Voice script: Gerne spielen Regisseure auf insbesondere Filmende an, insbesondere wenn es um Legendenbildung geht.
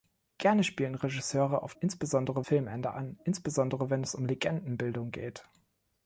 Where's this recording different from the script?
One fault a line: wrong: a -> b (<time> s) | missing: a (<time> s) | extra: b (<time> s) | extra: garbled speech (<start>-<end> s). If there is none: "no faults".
no faults